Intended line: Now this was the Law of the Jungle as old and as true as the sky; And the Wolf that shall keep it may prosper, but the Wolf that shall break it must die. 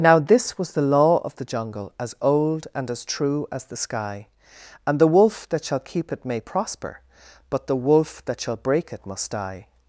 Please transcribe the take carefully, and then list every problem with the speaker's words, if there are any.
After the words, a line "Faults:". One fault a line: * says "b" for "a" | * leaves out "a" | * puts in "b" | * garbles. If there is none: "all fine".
Now this was the Law of the Jungle as old and as true as the sky; And the Wolf that shall keep it may prosper, but the Wolf that shall break it must die.
Faults:
all fine